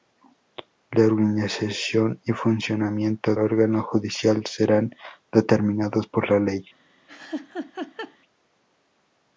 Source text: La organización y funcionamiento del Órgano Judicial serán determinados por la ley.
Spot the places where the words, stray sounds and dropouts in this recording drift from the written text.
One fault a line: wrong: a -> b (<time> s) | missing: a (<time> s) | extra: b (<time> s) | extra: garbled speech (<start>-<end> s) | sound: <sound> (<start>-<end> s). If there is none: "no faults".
missing: del (3.4 s)
sound: laugh (7.1-8.2 s)